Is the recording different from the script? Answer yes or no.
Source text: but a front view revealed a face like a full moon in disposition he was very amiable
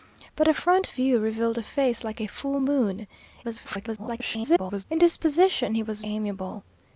yes